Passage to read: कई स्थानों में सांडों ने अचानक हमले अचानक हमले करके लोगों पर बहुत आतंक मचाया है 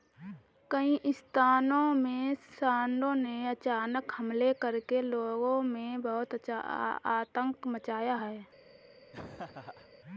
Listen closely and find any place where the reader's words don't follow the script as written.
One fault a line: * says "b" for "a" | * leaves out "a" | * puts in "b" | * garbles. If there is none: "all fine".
* leaves out "अचानक हमले"
* says "में" for "पर"